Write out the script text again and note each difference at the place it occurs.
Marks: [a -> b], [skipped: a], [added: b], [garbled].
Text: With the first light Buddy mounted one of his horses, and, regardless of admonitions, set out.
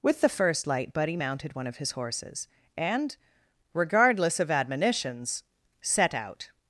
With the first light Buddy mounted one of his horses, and, regardless of admonitions, set out.